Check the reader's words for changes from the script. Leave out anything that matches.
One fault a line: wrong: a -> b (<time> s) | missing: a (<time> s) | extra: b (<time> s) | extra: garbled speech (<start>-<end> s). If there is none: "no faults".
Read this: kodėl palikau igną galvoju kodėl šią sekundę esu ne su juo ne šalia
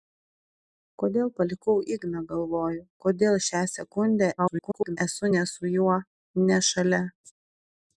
extra: garbled speech (4.4-5.0 s)